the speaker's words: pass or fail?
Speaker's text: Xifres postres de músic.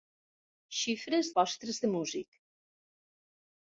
pass